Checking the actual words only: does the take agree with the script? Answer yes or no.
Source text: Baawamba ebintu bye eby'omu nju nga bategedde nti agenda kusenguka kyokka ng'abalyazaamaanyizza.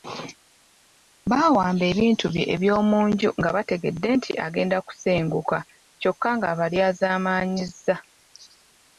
yes